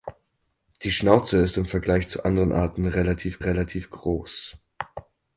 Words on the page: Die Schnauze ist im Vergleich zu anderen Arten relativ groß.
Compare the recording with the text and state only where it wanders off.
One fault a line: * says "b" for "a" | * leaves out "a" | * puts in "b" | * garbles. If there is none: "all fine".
* puts in "relativ"